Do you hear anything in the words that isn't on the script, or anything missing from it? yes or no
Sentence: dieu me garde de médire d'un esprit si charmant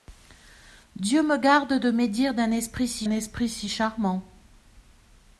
yes